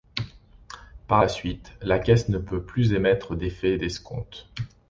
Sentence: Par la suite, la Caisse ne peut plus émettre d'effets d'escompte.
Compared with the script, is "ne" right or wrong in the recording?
right